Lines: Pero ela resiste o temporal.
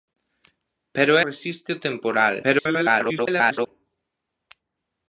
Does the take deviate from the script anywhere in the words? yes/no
yes